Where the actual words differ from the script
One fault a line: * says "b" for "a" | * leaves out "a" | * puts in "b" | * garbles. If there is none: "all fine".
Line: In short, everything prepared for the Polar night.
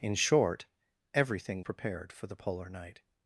all fine